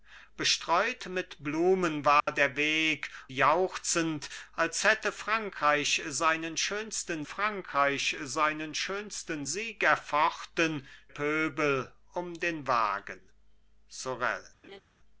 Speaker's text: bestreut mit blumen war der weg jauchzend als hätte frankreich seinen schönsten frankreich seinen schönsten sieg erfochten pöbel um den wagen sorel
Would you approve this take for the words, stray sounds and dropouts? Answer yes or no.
no